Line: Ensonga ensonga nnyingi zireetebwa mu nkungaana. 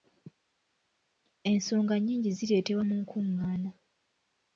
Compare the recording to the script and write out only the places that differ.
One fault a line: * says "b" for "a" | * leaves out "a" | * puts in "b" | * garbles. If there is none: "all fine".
* leaves out "ensonga"